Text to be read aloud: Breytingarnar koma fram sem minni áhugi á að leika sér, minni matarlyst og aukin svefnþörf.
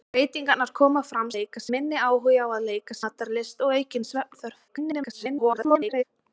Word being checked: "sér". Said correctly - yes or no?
no